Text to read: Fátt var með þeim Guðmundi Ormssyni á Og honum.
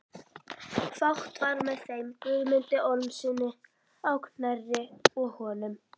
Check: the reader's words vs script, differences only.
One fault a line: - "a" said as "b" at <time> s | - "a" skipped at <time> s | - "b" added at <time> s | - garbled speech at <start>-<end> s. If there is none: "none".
- "Knerri" added at 4.3 s